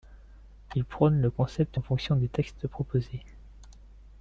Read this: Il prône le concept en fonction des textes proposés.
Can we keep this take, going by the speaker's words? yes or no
yes